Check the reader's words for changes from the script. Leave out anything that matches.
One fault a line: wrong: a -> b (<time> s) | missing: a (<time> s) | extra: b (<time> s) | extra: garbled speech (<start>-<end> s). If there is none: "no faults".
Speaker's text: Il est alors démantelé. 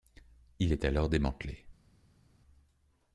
no faults